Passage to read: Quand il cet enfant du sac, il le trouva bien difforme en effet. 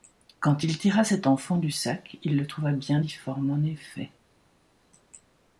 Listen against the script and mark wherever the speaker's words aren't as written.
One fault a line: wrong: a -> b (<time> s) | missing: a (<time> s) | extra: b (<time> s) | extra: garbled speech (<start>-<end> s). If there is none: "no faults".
extra: tira (0.8 s)